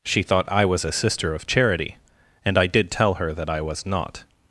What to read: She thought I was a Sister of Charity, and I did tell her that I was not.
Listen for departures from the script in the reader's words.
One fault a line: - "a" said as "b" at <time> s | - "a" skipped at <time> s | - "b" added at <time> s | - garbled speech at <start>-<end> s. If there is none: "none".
none